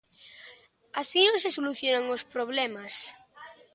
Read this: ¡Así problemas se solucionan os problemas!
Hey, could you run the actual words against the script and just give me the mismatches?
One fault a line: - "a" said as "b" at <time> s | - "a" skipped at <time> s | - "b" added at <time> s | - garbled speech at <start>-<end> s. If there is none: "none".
- "problemas" said as "non" at 1.2 s